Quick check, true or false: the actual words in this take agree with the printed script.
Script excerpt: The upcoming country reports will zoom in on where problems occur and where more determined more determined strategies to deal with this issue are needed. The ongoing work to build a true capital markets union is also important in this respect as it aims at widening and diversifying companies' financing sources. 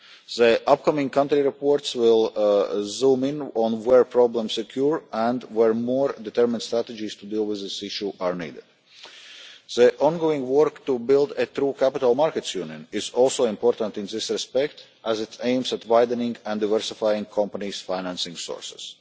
false